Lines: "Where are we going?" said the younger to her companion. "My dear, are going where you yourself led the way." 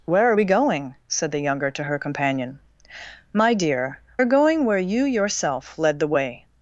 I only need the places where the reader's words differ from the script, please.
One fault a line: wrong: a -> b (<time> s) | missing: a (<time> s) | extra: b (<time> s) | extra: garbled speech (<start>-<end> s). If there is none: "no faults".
no faults